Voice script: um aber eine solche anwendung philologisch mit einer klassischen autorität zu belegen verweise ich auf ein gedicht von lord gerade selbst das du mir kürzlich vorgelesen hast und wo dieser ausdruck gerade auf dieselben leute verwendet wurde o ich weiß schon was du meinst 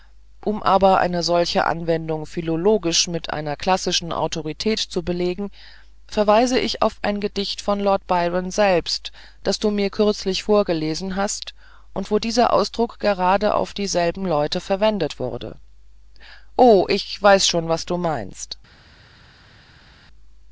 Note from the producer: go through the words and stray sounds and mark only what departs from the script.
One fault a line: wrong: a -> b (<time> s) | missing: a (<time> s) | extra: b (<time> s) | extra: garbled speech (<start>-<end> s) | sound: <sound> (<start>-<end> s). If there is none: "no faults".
wrong: gerade -> byron (8.1 s)